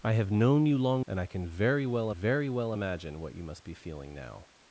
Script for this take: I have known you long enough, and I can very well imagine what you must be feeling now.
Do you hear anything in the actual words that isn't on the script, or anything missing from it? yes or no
yes